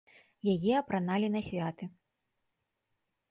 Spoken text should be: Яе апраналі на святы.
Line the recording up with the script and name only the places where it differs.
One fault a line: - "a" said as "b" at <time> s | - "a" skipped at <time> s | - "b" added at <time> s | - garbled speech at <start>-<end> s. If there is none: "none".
none